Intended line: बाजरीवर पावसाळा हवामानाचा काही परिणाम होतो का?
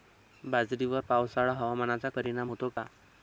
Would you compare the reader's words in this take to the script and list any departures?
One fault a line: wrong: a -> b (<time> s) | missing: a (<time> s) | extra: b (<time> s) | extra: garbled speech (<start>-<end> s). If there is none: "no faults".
missing: काही (2.1 s)